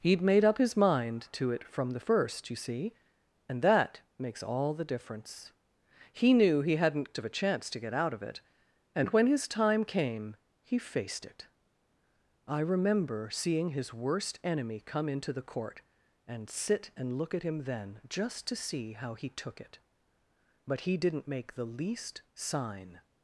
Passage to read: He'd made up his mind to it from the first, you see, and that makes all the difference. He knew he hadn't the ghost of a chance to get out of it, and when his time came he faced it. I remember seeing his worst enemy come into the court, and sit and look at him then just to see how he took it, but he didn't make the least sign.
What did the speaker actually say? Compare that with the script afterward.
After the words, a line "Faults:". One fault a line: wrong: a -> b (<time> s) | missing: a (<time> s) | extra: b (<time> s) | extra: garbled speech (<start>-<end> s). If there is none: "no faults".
He'd made up his mind to it from the first, you see, and that makes all the difference. He knew he hadn't of a chance to get out of it, and when his time came he faced it. I remember seeing his worst enemy come into the court, and sit and look at him then just to see how he took it, but he didn't make the least sign.
Faults:
missing: the ghost (7.1 s)